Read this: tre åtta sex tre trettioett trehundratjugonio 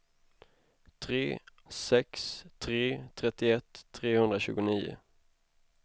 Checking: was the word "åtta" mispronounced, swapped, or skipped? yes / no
yes